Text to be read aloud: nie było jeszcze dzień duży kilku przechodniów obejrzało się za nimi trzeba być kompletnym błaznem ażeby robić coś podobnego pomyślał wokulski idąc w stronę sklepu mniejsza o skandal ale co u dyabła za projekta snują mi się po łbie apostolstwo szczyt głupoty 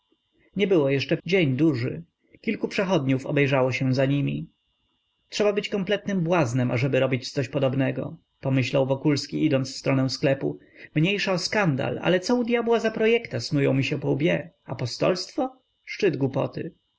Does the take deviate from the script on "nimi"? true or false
false